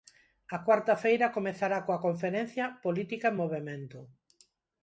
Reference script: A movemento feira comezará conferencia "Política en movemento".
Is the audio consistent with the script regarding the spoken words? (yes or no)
no